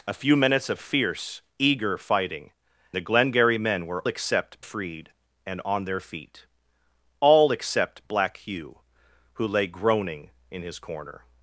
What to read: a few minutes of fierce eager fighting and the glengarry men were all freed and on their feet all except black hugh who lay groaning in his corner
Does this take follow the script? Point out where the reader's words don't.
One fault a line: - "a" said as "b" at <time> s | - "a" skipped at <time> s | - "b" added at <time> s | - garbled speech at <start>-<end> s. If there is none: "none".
- "and" skipped at 2.5 s
- "all" said as "except" at 4.1 s